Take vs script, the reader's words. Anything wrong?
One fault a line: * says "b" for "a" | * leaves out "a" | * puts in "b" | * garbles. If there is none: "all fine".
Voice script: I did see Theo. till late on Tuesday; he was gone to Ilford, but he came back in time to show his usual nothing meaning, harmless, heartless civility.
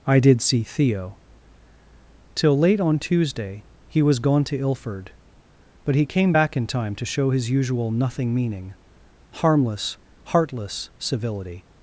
all fine